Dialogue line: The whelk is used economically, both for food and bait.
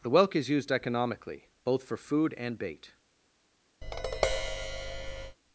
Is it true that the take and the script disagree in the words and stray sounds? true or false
true